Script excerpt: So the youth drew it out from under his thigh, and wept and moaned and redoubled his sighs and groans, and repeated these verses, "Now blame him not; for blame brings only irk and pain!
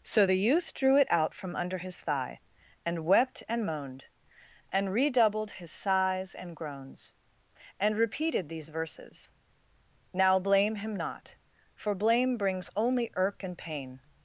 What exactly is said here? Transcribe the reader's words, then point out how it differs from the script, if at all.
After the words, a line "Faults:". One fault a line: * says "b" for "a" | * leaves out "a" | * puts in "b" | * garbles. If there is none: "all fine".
So the youth drew it out from under his thigh, and wept and moaned and redoubled his sighs and groans, and repeated these verses, "Now blame him not; for blame brings only irk and pain!
Faults:
all fine